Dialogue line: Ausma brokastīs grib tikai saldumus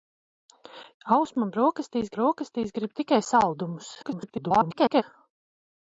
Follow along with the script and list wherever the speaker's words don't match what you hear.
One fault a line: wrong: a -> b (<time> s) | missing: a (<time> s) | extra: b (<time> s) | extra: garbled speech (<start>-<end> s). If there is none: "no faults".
extra: brokastīs (2.2 s)
extra: garbled speech (4.0-5.0 s)